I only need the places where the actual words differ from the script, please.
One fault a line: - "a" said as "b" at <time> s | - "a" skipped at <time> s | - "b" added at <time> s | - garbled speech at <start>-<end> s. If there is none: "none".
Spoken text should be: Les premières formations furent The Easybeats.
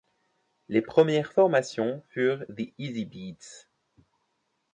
none